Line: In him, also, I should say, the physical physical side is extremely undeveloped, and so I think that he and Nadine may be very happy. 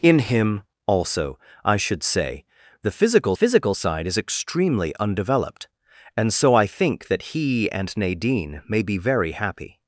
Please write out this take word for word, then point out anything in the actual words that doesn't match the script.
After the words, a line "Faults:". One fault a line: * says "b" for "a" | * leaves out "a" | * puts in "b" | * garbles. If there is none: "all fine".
In him, also, I should say, the physical physical side is extremely undeveloped, and so I think that he and Nadine may be very happy.
Faults:
all fine